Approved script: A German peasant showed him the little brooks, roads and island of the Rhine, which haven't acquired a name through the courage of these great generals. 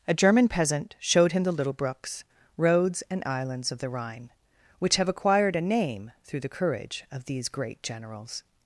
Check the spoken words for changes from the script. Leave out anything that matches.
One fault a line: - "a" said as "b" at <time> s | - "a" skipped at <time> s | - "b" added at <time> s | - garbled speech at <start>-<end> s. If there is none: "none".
- "island" said as "islands" at 3.2 s
- "haven't" said as "have" at 5.0 s